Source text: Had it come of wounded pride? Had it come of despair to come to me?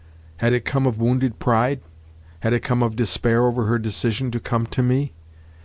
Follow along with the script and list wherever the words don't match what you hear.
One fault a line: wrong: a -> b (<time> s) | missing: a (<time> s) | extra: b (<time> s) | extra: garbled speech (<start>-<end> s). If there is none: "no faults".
extra: over her decision (3.4 s)